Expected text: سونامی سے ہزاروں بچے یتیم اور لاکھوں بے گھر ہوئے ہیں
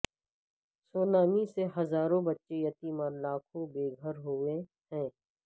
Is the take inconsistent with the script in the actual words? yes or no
no